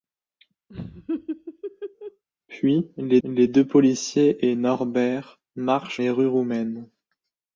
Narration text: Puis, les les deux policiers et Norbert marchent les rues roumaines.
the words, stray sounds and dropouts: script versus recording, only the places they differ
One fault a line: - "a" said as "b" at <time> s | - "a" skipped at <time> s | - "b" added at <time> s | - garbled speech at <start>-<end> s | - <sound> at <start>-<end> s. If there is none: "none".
- laugh at 0.7-2.2 s